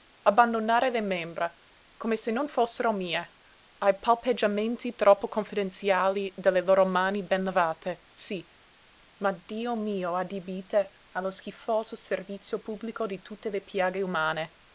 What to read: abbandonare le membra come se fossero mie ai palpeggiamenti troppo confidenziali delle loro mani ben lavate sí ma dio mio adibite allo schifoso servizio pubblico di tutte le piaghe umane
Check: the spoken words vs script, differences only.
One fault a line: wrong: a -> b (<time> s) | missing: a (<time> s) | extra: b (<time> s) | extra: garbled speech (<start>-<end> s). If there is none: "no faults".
extra: non (2.3 s)